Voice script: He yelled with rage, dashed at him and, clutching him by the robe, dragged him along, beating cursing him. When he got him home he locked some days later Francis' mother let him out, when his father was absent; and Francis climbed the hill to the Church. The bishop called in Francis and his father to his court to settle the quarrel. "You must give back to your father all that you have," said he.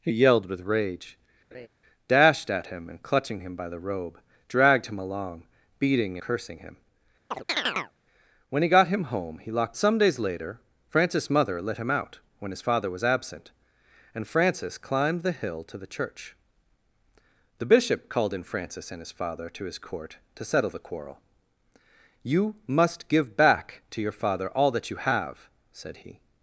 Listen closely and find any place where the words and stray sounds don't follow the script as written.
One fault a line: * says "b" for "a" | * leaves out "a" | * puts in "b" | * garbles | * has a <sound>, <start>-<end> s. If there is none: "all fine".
* has a laugh, 1.5-1.7 s
* has a chirp, 7.3-7.9 s